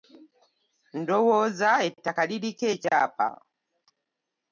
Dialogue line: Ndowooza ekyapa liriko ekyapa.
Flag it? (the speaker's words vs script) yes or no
yes